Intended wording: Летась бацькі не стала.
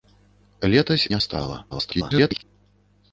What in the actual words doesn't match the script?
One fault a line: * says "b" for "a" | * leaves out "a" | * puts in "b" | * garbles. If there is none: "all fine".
* leaves out "бацькі"
* garbles